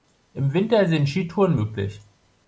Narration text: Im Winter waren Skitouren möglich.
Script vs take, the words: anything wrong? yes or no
yes